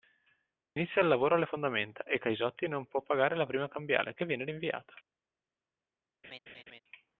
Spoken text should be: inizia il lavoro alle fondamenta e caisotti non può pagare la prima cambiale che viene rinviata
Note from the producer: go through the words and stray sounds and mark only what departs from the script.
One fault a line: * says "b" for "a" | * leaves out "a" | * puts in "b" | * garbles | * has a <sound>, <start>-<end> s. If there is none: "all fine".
* has a laugh, 6.2-6.8 s